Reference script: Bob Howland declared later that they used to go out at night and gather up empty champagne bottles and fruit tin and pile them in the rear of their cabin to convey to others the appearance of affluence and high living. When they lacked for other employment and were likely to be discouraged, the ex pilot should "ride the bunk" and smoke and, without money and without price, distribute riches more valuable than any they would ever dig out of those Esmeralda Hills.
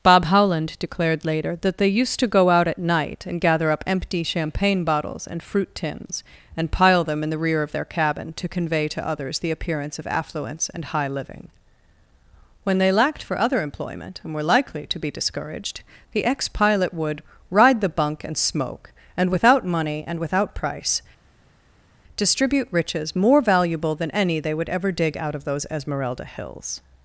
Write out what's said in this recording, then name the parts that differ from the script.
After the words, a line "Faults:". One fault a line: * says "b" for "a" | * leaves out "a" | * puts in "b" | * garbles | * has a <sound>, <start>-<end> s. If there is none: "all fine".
Bob Howland declared later that they used to go out at night and gather up empty champagne bottles and fruit tins and pile them in the rear of their cabin to convey to others the appearance of affluence and high living. When they lacked for other employment and were likely to be discouraged, the ex pilot would "ride the bunk" and smoke and, without money and without price, distribute riches more valuable than any they would ever dig out of those Esmeralda Hills.
Faults:
* says "tins" for "tin"
* says "would" for "should"